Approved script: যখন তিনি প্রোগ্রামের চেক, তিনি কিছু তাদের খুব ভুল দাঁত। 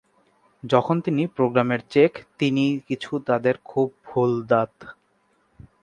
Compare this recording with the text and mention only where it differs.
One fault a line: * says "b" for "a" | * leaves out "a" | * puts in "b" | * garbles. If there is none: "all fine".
all fine